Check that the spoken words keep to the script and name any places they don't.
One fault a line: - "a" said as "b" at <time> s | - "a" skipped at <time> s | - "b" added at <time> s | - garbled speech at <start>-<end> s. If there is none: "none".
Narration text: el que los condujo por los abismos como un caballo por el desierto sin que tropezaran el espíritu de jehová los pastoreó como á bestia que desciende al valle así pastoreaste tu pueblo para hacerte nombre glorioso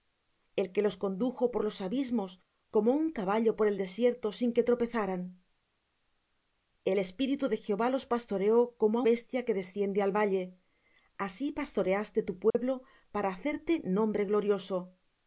none